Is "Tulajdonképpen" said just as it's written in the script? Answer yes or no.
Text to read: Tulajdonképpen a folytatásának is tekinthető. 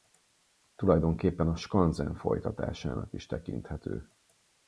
yes